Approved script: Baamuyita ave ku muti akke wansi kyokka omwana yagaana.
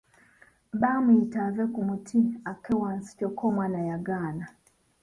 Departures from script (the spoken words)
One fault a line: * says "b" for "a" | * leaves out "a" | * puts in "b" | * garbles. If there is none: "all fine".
all fine